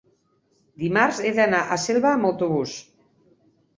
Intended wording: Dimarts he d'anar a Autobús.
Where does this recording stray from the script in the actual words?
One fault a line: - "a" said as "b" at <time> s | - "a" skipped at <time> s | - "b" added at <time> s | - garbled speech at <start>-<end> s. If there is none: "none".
- "Selva amb" added at 1.9 s